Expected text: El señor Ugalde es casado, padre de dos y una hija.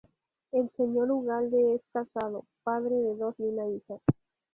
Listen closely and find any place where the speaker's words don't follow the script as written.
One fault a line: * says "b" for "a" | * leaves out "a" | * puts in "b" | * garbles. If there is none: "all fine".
all fine